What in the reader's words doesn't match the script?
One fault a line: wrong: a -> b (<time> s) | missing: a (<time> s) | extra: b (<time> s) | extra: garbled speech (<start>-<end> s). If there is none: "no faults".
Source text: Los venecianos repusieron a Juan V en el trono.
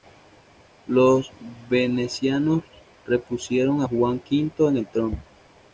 no faults